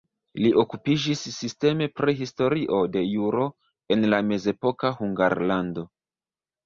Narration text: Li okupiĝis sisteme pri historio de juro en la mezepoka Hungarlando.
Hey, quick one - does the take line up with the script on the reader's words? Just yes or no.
yes